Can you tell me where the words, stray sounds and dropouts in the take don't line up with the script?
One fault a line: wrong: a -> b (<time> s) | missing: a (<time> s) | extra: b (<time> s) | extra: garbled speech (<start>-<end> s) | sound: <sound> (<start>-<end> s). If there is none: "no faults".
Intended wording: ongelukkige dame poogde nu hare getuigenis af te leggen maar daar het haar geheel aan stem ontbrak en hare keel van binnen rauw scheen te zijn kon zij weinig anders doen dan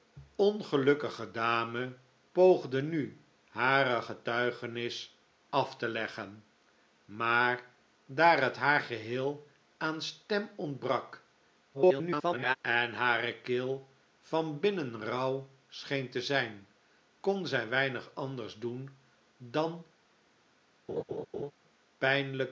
extra: garbled speech (11.7-12.6 s)
sound: laugh (20.9-21.5 s)